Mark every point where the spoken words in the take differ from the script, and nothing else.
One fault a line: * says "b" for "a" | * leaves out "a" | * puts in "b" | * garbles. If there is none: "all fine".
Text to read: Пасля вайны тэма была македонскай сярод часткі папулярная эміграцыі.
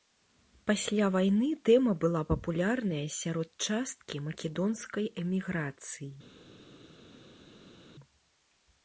* says "папулярная" for "македонскай"
* says "македонскай" for "папулярная"